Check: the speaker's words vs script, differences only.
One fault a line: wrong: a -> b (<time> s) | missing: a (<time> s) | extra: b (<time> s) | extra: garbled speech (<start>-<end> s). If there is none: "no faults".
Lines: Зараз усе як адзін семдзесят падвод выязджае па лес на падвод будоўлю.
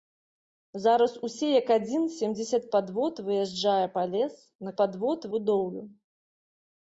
no faults